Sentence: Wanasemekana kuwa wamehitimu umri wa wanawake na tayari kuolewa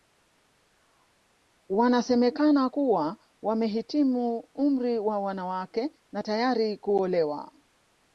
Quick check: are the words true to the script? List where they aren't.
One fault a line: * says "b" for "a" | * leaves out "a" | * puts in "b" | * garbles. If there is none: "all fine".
all fine